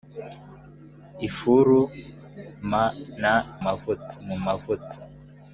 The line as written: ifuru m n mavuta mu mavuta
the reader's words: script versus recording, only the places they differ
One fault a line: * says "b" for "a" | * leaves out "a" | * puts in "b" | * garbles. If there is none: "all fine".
all fine